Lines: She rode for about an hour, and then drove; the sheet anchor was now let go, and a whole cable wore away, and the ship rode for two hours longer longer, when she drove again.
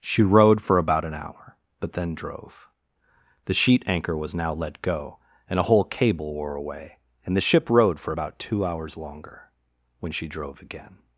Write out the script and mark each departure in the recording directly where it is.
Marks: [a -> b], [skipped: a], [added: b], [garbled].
She rode for about an hour, [and -> but] then drove; the sheet anchor was now let go, and a whole cable wore away, and the ship rode for [added: about] two hours longer [skipped: longer,] when she drove again.